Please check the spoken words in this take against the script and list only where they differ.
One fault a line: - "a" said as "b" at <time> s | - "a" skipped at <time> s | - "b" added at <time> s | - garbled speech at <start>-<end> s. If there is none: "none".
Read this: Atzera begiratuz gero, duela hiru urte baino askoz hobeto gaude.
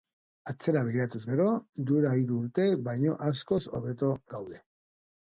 none